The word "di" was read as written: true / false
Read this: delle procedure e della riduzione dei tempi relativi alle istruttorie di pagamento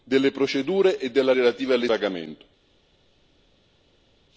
false